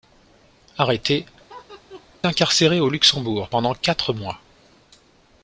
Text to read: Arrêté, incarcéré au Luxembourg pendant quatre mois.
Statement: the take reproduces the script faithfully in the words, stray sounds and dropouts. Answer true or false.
false